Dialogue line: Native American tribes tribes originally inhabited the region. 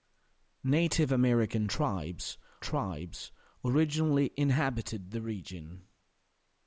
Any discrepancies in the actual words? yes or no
no